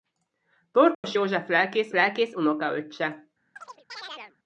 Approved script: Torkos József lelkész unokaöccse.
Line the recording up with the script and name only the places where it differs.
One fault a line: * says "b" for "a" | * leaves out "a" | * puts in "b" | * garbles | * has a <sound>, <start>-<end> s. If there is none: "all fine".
* has a dropout, 0.9-1.0 s
* puts in "lelkész"
* has a chirp, 3.6-4.4 s